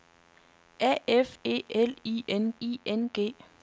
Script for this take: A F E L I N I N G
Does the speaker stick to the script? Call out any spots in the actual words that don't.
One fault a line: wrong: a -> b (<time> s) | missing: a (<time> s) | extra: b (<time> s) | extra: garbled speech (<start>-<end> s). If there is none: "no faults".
no faults